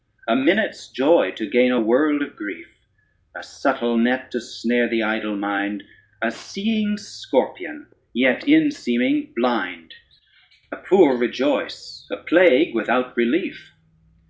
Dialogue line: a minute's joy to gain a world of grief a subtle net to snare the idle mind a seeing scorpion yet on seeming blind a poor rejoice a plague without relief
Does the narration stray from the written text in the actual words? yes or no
yes